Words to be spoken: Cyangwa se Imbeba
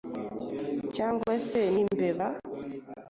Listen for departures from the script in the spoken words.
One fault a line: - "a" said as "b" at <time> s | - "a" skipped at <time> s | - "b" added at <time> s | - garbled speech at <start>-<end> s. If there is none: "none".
none